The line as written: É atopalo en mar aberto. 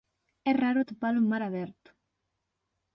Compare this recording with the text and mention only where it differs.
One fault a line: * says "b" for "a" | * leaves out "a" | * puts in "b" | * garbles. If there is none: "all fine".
* puts in "raro"